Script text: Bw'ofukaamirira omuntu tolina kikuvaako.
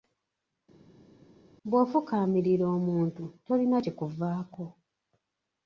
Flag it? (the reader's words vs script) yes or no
no